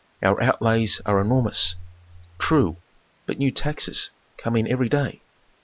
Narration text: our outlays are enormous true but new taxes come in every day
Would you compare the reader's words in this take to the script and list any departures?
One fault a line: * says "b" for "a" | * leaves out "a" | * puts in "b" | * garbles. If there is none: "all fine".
all fine